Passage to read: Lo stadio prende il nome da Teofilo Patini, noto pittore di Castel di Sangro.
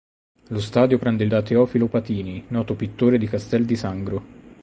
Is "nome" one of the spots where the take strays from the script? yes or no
yes